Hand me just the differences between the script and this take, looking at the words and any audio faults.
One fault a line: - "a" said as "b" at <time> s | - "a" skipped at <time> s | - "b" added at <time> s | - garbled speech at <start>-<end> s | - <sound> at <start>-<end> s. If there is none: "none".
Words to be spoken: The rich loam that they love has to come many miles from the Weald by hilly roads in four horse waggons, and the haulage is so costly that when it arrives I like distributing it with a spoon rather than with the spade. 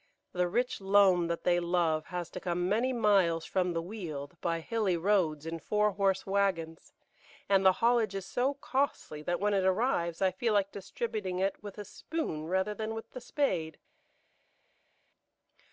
- "feel" added at 10.3 s